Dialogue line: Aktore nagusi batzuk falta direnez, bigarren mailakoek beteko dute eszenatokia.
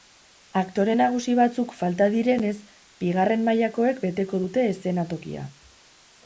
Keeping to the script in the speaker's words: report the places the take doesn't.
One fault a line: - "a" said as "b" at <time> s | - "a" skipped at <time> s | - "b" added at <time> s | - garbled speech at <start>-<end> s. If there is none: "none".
none